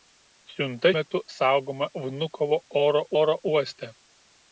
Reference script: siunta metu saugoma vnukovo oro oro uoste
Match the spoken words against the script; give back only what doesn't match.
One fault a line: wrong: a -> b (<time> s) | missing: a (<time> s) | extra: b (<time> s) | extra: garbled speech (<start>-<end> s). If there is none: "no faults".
no faults